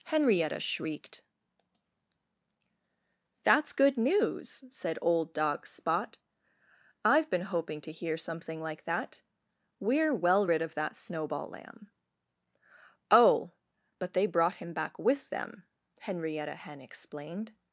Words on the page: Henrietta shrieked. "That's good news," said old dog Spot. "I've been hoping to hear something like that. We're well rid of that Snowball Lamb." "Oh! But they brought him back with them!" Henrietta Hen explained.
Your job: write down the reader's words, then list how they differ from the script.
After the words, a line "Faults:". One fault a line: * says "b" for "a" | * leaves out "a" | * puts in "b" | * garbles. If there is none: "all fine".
Henrietta shrieked. "That's good news," said old dog Spot. "I've been hoping to hear something like that. We're well rid of that Snowball Lamb." "Oh! But they brought him back with them!" Henrietta Hen explained.
Faults:
all fine